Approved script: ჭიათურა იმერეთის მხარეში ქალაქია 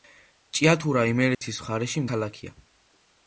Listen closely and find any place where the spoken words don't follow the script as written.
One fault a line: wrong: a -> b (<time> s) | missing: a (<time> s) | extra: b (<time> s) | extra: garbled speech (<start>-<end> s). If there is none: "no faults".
no faults